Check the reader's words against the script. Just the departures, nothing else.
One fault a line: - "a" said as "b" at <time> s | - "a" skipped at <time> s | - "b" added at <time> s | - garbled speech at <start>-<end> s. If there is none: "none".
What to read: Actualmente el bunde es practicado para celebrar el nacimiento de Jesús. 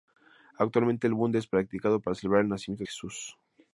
- "de" skipped at 2.9 s